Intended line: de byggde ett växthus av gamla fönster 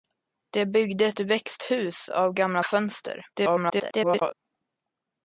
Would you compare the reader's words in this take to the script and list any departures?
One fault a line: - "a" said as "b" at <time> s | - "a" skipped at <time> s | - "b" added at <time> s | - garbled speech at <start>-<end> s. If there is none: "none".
- garbled speech at 3.3-4.3 s